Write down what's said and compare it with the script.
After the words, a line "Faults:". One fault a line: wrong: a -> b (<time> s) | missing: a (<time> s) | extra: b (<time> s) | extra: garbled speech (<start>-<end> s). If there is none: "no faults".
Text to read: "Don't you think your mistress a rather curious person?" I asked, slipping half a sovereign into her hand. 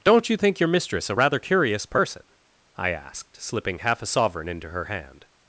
"Don't you think your mistress a rather curious person?" I asked, slipping half a sovereign into her hand.
Faults:
no faults